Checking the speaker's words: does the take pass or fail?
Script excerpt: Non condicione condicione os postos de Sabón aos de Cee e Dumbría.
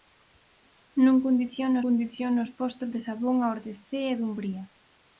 pass